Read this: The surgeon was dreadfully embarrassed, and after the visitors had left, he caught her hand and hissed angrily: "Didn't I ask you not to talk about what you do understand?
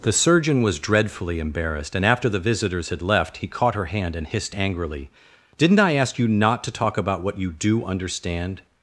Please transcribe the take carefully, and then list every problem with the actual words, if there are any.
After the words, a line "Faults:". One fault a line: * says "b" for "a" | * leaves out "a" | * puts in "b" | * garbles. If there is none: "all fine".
The surgeon was dreadfully embarrassed, and after the visitors had left, he caught her hand and hissed angrily: "Didn't I ask you not to talk about what you do understand?
Faults:
all fine